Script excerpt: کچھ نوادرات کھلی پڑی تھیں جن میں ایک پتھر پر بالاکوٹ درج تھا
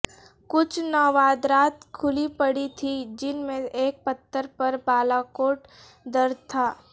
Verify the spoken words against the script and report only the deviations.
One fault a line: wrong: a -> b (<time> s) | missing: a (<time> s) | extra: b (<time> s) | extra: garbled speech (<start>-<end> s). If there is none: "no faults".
no faults